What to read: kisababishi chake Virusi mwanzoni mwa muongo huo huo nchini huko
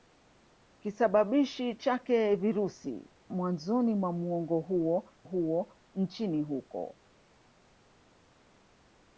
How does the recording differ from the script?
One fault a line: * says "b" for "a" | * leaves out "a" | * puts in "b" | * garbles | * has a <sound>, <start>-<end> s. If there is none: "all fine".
all fine